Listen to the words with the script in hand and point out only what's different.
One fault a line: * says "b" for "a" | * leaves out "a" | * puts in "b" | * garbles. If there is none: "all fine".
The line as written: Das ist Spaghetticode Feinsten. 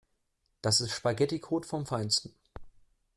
* puts in "vom"